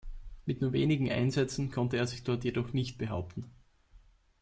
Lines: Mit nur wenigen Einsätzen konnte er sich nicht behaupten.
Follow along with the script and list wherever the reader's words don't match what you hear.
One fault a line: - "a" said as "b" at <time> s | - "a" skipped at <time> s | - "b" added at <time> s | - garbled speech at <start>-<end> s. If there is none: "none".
- "dort jedoch" added at 2.2 s